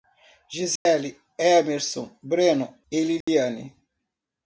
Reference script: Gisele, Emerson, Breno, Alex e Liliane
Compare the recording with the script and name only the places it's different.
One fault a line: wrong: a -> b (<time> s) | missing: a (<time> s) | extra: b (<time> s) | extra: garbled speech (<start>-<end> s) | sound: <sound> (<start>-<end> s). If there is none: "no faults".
sound: dropout (0.8-0.9 s)
missing: Alex (2.8 s)
sound: dropout (3.2-3.3 s)